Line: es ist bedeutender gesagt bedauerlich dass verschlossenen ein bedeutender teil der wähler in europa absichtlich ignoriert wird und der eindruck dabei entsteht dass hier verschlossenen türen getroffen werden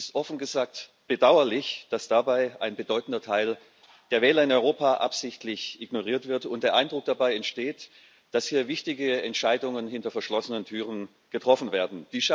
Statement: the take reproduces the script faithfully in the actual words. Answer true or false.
false